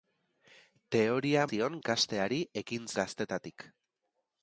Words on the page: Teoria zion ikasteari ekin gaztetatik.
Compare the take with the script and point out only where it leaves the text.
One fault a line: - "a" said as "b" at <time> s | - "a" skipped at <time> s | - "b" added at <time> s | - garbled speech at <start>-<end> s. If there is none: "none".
none